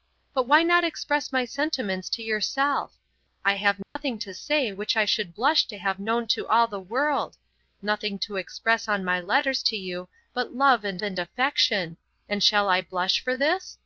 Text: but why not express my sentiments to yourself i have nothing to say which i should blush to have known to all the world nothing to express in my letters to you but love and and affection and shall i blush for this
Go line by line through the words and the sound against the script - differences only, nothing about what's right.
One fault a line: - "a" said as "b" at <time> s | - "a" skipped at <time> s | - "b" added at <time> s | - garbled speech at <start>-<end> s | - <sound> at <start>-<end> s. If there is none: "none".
- dropout at 3.8-4.0 s